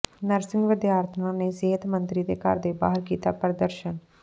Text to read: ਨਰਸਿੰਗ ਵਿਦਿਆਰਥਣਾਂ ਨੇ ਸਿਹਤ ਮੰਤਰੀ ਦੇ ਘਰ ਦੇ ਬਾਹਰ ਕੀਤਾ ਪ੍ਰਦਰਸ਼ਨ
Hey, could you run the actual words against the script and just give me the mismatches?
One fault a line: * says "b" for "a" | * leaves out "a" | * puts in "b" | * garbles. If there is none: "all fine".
all fine